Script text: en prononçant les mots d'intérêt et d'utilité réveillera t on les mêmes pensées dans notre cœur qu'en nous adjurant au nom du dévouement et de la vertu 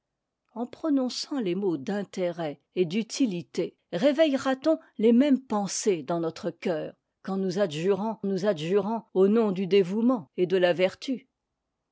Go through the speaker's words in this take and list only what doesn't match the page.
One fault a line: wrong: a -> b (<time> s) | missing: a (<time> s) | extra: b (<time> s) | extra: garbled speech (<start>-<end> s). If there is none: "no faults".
extra: nous adjurant (8.2 s)